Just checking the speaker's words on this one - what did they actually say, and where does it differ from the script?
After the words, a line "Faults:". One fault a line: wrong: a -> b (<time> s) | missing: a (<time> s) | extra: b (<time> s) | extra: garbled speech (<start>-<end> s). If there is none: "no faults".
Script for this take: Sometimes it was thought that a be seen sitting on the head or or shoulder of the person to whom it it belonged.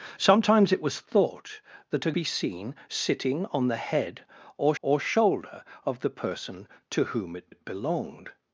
Sometimes it was thought that a be seen sitting on the head or or shoulder of the person to whom it it belonged.
Faults:
no faults